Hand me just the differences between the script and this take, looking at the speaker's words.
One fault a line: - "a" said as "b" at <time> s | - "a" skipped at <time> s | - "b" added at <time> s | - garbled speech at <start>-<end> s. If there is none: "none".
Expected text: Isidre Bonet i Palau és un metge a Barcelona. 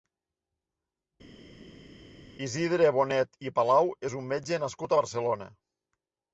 - "nascut" added at 4.7 s